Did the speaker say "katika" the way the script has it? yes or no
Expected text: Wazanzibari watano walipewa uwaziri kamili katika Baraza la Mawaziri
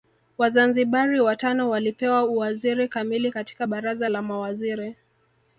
yes